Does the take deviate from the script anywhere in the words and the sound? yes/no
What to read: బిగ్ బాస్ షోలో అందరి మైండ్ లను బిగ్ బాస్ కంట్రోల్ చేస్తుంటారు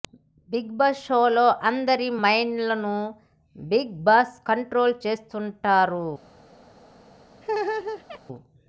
yes